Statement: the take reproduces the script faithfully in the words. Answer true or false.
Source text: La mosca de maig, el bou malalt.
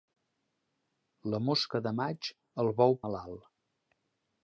true